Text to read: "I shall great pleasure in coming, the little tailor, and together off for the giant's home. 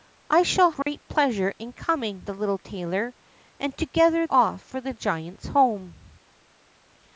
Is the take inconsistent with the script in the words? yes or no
no